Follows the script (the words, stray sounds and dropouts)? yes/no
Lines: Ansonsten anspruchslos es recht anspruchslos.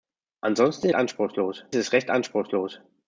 yes